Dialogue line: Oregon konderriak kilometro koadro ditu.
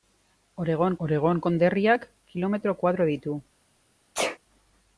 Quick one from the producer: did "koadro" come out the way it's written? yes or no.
yes